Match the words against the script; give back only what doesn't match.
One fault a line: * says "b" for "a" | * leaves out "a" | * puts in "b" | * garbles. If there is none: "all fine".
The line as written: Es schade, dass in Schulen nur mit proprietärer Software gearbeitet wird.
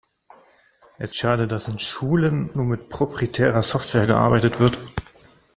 all fine